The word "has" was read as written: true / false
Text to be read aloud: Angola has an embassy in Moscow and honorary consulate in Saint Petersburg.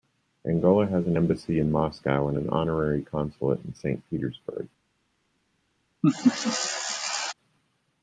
true